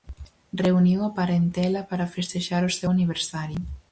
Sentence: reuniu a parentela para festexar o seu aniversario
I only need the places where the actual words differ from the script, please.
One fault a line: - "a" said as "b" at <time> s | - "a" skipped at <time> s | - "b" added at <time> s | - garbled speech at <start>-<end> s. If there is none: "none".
none